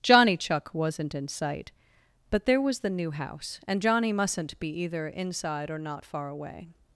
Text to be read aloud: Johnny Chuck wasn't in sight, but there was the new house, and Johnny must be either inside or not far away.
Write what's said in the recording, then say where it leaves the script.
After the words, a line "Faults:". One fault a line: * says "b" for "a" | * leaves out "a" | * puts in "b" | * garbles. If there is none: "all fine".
Johnny Chuck wasn't in sight, but there was the new house, and Johnny mustn't be either inside or not far away.
Faults:
* says "mustn't" for "must"